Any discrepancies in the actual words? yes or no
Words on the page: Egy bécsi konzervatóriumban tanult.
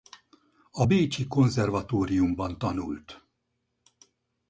yes